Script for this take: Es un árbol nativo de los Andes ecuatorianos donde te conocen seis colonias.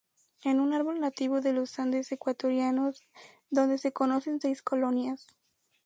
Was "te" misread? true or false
true